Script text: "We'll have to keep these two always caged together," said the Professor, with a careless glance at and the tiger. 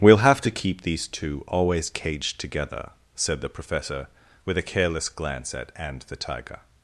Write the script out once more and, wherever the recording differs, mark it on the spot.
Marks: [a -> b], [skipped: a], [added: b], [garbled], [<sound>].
"We'll have to keep these two always caged together," said the Professor, with a careless glance at and the tiger.